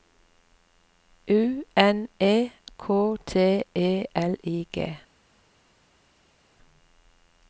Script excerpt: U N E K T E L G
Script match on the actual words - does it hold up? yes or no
no